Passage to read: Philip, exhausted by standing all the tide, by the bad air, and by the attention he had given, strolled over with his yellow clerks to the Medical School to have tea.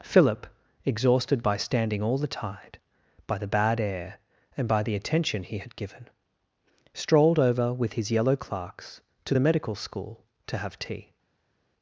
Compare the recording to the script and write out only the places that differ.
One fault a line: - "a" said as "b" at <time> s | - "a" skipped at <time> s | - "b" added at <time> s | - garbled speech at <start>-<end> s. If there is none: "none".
none